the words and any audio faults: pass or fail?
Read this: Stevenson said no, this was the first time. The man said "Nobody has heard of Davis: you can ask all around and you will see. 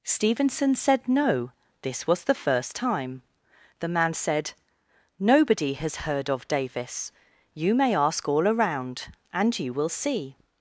fail